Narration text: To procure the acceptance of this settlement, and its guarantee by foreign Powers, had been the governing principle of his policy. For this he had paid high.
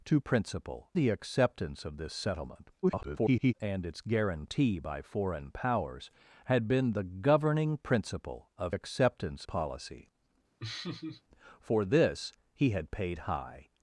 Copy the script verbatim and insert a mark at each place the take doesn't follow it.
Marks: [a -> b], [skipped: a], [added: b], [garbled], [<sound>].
To [procure -> principle] the acceptance of this settlement, [garbled] and its guarantee by foreign Powers, had been the governing principle of [his -> acceptance] policy. [laugh] For this he had paid high.